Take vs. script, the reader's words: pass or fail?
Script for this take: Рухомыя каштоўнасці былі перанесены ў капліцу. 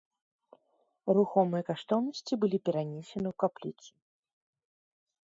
pass